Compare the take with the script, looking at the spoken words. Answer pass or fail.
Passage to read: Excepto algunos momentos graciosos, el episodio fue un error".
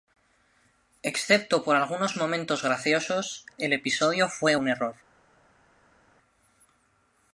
fail